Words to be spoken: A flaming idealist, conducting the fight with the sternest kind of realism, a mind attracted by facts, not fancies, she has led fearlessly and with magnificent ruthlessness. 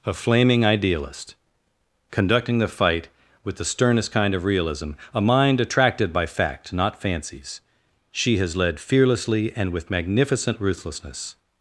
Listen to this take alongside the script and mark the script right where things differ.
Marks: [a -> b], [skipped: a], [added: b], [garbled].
A flaming idealist, conducting the fight with the sternest kind of realism, a mind attracted by [facts, -> fact] not fancies, she has led fearlessly and with magnificent ruthlessness.